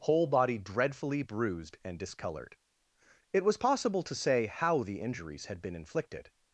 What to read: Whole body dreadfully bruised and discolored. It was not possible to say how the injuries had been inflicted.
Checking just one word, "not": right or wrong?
wrong